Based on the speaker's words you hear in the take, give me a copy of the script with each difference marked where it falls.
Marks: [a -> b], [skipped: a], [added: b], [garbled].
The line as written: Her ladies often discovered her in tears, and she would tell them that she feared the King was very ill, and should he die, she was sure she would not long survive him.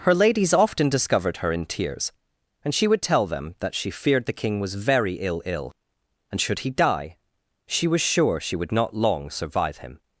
Her ladies often discovered her in tears, and she would tell them that she feared the King was very ill, [added: ill] and should he die, she was sure she would not long survive him.